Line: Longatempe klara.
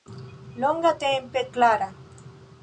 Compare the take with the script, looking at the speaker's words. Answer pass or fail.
pass